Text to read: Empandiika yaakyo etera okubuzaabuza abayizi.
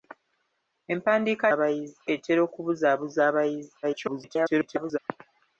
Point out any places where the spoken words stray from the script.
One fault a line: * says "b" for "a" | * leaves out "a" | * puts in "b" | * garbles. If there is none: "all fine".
* says "abayizi" for "yaakyo"
* garbles